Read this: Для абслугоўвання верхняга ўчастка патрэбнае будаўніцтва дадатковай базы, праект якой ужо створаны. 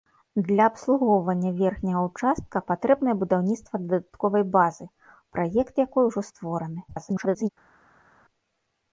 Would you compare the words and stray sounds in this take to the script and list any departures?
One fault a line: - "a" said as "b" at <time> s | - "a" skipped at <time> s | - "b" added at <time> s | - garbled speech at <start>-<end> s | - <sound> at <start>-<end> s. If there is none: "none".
- garbled speech at 6.9-7.5 s